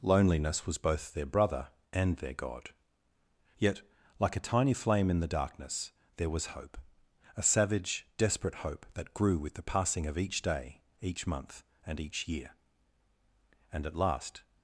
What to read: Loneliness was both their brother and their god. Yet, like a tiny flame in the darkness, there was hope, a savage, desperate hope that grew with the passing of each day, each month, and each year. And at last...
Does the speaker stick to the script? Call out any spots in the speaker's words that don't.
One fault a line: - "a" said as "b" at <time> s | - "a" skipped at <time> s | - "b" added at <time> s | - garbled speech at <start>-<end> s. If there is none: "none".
none